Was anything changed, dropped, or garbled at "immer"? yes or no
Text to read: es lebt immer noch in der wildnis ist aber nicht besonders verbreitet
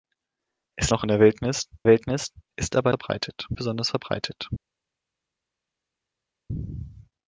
yes